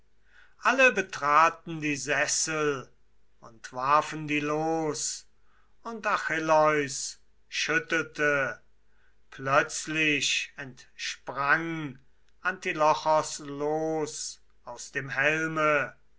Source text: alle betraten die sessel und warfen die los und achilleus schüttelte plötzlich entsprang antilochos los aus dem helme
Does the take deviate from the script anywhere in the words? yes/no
no